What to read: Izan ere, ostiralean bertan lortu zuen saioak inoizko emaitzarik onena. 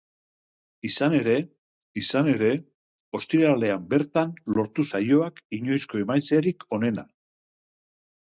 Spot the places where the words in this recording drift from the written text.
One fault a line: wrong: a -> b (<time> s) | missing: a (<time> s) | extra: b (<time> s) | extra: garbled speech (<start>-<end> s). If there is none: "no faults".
extra: izan ere (2.0 s)
missing: zuen (4.9 s)